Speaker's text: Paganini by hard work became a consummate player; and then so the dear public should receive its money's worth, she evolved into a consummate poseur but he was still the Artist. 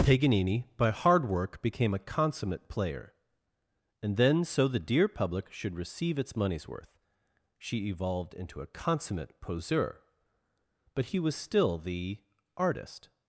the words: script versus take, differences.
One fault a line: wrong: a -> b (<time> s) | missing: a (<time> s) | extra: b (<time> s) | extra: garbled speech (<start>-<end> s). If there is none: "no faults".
no faults